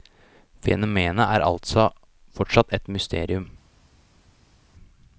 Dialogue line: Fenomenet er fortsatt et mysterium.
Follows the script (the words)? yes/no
no